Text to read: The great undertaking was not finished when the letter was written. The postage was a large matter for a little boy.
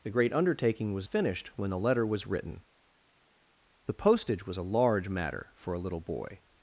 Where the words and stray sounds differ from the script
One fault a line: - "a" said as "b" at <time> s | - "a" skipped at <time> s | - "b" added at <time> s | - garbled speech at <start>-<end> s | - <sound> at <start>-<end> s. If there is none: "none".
- "not" skipped at 1.1 s